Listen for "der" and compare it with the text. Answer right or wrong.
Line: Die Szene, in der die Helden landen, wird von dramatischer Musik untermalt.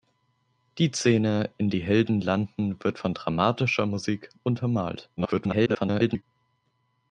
wrong